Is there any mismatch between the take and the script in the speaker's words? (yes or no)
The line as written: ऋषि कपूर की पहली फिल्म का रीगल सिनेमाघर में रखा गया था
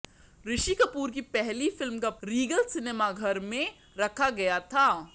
no